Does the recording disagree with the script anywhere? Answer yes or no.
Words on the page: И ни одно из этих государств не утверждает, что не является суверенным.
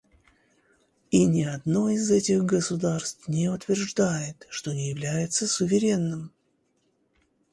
no